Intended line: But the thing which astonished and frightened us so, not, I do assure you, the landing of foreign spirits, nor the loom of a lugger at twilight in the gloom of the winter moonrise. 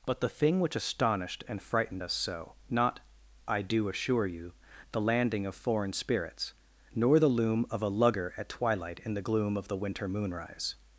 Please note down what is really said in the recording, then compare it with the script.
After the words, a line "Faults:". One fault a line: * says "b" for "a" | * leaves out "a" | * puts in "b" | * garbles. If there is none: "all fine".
But the thing which astonished and frightened us so, not, I do assure you, the landing of foreign spirits, nor the loom of a lugger at twilight in the gloom of the winter moonrise.
Faults:
all fine